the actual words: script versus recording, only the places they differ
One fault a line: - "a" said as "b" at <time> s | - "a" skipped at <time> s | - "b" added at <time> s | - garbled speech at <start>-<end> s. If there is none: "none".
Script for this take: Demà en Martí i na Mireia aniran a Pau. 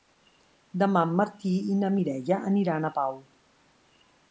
none